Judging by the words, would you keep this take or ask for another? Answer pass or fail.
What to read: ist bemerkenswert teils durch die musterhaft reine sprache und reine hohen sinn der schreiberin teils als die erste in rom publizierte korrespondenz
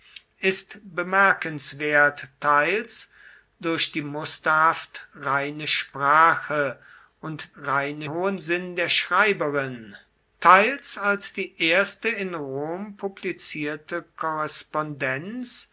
pass